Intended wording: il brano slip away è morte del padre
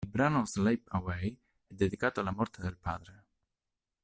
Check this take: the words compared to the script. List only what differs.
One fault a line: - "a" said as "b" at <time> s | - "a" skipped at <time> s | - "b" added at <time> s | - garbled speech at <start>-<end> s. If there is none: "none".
- "dedicato alla" added at 1.7 s